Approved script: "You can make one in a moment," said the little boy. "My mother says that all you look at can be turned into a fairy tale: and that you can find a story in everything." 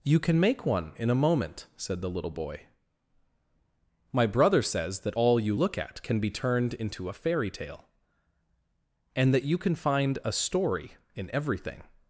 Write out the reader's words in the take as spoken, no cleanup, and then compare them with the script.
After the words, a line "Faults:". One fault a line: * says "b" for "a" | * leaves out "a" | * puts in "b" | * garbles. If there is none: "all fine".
"You can make one in a moment," said the little boy. "My brother says that all you look at can be turned into a fairy tale: and that you can find a story in everything."
Faults:
* says "brother" for "mother"